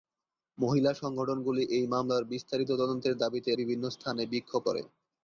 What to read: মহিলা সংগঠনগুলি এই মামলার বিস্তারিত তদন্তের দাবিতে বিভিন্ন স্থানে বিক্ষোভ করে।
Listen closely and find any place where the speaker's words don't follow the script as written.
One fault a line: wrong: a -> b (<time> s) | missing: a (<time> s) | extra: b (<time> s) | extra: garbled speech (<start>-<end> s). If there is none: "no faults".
no faults